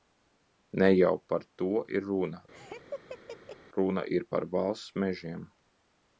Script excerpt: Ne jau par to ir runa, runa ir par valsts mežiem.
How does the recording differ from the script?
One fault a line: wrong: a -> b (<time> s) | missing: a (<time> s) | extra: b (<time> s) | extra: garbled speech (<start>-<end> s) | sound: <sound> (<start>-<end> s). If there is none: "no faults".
sound: laugh (2.5-3.6 s)